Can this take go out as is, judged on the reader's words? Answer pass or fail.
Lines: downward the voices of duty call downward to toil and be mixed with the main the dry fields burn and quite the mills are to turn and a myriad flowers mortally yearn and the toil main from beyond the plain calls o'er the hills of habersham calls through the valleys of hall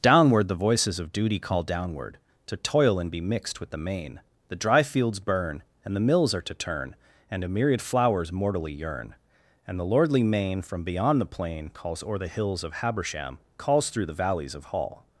fail